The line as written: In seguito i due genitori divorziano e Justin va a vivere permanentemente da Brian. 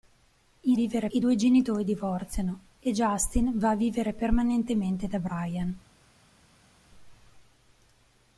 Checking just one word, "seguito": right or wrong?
wrong